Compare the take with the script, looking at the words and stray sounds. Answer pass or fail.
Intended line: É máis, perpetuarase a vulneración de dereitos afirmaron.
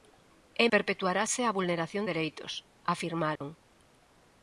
fail